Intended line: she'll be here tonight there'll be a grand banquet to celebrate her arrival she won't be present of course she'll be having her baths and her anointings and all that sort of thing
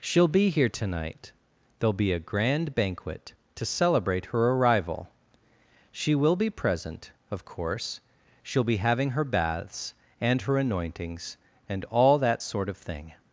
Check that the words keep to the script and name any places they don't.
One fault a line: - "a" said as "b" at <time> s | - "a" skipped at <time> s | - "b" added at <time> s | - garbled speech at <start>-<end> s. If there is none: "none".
- "won't" said as "will" at 6.2 s